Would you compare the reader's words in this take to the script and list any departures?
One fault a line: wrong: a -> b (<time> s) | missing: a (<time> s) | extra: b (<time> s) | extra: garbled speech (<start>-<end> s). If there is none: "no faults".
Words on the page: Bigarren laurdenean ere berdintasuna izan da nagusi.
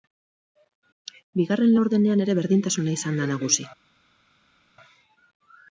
no faults